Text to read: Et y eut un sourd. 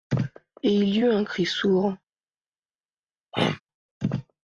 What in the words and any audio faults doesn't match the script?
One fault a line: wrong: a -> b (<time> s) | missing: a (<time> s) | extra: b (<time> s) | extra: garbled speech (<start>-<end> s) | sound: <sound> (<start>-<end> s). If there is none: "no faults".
extra: il (0.7 s)
extra: cri (1.2 s)
sound: throat clearing (3.3-3.6 s)